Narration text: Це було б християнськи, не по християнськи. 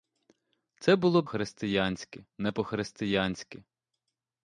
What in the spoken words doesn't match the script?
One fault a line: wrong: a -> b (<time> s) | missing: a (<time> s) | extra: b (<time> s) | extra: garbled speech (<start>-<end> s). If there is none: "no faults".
no faults